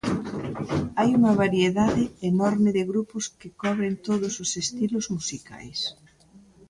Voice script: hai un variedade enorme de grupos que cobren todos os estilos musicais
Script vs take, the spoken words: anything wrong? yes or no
yes